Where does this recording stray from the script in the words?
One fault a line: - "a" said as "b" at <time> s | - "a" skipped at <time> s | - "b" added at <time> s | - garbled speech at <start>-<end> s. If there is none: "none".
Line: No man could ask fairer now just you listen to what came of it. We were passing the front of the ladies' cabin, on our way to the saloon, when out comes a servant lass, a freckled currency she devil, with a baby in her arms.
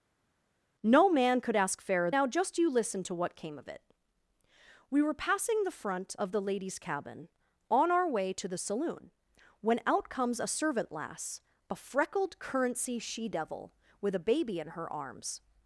none